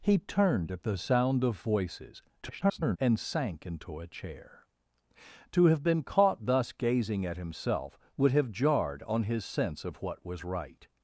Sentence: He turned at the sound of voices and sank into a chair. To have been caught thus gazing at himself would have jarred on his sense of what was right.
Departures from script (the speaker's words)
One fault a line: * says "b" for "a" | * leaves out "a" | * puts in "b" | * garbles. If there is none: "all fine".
* garbles